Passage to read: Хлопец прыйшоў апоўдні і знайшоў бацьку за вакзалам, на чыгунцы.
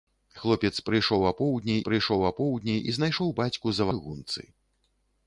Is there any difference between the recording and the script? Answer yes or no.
yes